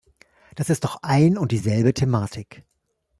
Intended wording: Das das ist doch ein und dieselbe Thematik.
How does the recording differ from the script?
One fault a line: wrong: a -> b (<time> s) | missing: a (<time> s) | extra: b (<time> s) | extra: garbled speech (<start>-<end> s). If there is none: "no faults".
missing: das (0.7 s)